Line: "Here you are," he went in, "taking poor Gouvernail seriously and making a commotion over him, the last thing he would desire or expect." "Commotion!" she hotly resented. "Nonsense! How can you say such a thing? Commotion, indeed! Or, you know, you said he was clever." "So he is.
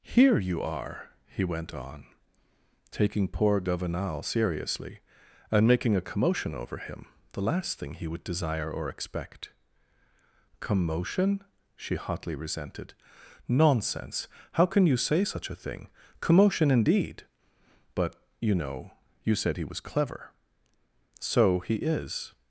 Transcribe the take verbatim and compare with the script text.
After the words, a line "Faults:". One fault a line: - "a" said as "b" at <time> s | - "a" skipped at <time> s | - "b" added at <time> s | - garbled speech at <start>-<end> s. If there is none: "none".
"Here you are," he went on, "taking poor Gouvernail seriously and making a commotion over him, the last thing he would desire or expect." "Commotion!" she hotly resented. "Nonsense! How can you say such a thing? Commotion, indeed! But, you know, you said he was clever." "So he is.
Faults:
- "in" said as "on" at 1.7 s
- "Or" said as "But" at 17.9 s